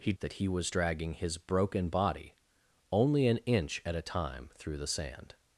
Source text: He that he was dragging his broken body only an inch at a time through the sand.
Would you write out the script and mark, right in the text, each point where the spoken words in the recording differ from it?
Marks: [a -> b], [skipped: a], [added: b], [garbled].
He that he was dragging his broken body only an inch at a time through the sand.